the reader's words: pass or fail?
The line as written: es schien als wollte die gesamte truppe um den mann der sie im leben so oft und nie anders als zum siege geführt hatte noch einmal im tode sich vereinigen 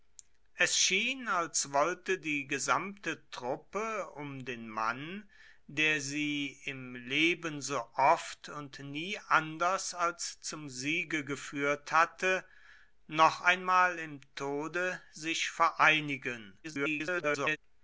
fail